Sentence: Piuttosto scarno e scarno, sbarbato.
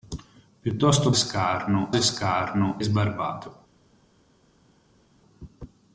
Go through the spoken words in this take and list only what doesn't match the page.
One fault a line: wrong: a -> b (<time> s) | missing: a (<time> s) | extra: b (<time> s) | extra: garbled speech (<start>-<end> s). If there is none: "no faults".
no faults